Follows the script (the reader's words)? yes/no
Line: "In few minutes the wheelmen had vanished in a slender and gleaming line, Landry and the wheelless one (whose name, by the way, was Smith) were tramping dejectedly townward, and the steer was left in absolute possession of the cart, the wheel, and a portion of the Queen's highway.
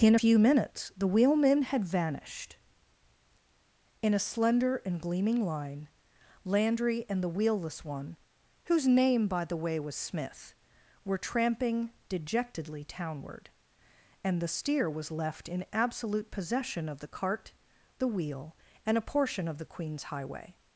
yes